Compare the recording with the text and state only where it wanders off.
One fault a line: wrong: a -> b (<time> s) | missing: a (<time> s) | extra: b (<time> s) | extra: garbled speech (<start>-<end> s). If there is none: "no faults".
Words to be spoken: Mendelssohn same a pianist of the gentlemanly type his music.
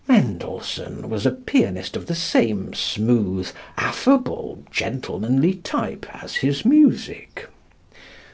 wrong: same -> was (1.1 s)
extra: same smooth affable (2.1 s)
extra: as (6.2 s)